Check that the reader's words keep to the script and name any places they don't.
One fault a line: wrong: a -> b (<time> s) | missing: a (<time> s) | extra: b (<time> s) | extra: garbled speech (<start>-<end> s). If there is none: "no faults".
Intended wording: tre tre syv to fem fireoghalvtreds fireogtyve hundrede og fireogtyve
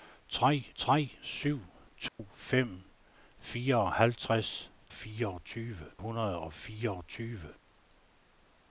no faults